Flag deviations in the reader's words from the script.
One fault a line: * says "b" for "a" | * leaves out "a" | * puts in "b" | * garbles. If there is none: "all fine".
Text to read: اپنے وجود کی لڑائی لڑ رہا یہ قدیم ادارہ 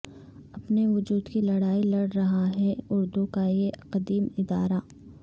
* puts in "ہے اردو کا"